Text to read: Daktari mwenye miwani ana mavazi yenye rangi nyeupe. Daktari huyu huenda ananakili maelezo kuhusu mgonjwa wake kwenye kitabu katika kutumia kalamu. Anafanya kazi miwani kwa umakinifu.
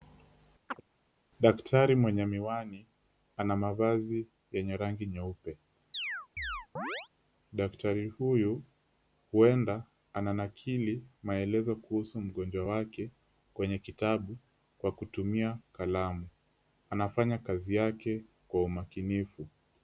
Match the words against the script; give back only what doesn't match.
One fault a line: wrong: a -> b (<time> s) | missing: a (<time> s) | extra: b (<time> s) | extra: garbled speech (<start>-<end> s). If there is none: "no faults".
wrong: katika -> kwa (14.8 s)
wrong: miwani -> yake (17.8 s)